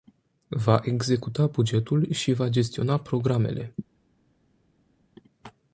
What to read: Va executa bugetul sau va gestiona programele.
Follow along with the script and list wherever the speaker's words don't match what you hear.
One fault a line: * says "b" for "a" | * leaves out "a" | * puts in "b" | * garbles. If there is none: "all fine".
* says "și" for "sau"